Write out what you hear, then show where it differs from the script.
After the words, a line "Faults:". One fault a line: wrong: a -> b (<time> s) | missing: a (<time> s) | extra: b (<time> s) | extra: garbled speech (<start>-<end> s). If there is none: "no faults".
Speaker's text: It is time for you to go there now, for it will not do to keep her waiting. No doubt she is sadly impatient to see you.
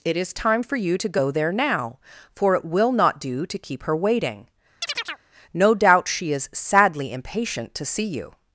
It is time for you to go there now, for it will not do to keep her waiting. No doubt she is sadly impatient to see you.
Faults:
no faults